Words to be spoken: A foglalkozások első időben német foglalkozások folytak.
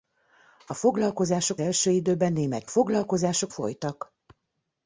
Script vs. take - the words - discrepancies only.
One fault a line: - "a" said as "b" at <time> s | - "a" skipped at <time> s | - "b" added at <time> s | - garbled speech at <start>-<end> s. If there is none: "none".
none